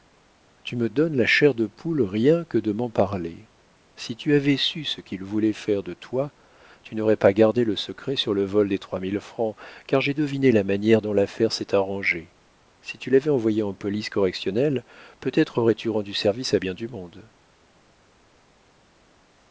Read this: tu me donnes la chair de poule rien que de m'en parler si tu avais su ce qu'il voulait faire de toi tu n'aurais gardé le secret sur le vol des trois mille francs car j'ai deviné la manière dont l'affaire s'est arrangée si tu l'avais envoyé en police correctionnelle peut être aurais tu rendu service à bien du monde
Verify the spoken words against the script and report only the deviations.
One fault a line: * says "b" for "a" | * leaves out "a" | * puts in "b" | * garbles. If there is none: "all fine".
* puts in "pas"